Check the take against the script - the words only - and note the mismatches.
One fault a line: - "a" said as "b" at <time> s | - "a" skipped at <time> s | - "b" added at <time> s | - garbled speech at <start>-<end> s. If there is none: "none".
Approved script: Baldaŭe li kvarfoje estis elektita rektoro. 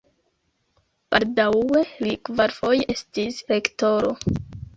- "elektita" skipped at 3.4 s